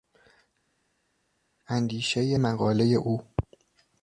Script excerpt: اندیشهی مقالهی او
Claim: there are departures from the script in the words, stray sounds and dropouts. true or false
false